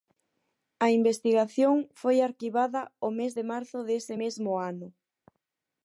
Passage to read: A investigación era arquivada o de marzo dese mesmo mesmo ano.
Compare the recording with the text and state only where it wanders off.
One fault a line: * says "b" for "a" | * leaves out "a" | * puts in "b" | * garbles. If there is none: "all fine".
* says "foi" for "era"
* puts in "mes"
* leaves out "mesmo"